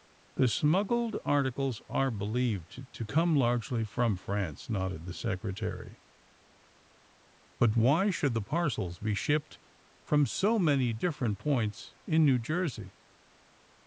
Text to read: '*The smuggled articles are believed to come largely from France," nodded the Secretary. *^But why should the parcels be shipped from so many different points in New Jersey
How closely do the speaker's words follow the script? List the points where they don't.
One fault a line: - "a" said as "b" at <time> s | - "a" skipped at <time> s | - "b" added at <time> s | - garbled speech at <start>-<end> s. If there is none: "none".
none